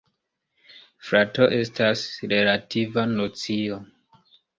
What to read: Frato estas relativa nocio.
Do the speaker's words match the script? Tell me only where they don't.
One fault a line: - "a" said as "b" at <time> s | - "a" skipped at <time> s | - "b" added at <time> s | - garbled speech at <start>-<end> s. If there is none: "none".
none